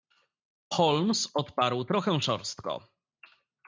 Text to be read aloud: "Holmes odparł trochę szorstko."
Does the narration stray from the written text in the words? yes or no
no